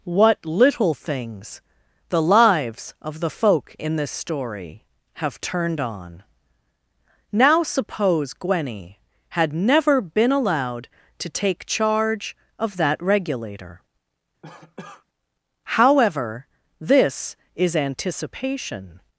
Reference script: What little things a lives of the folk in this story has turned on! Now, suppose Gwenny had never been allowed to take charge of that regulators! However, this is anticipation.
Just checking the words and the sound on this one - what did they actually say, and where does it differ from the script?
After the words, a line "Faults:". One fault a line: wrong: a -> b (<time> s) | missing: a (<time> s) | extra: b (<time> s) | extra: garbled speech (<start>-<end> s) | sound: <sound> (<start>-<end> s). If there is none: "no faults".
What little things the lives of the folk in this story have turned on! Now, suppose Gwenny had never been allowed to take charge of that regulator! However, this is anticipation.
Faults:
wrong: a -> the (2.1 s)
wrong: has -> have (5.1 s)
wrong: regulators -> regulator (13.0 s)
sound: cough (14.4-15.0 s)